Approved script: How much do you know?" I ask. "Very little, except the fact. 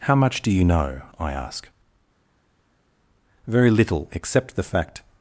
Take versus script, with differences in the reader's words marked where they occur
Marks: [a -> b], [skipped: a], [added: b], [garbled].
How much do you know?" I ask. "Very little, except the fact.